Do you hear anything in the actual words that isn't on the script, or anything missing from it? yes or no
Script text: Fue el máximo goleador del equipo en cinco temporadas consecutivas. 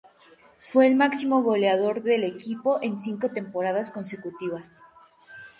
no